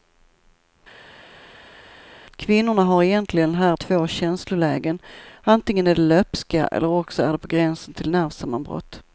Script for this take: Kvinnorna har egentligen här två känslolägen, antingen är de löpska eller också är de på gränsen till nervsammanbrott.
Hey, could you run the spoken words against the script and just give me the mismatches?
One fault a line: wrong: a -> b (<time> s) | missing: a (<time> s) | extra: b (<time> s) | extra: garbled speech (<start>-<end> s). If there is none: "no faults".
no faults